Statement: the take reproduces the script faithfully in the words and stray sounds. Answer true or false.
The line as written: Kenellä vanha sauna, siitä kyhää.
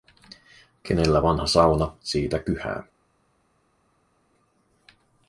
true